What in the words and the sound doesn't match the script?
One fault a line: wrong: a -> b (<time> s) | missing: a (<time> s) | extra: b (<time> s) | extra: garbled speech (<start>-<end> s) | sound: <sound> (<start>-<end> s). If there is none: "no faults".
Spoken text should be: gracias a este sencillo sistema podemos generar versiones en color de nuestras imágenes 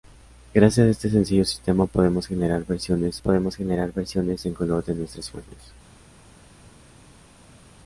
extra: podemos generar versiones (3.2 s)